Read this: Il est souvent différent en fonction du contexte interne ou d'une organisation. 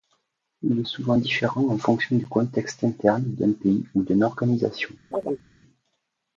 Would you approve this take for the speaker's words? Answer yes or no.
no